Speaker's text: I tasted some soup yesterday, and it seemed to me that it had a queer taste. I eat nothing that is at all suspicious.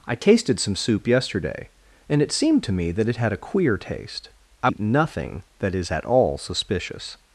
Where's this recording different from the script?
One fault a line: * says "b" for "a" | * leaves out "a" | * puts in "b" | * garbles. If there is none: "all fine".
all fine